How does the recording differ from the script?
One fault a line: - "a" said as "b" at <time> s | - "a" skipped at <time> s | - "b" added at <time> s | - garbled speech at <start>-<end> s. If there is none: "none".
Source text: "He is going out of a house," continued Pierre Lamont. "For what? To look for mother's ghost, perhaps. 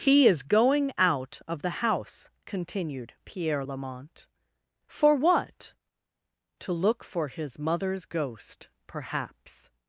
- "a" said as "the" at 1.6 s
- "his" added at 7.3 s